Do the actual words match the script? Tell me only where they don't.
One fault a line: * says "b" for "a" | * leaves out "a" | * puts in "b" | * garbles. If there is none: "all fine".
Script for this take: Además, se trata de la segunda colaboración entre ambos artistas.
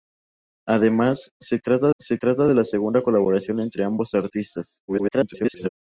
* puts in "se trata"
* garbles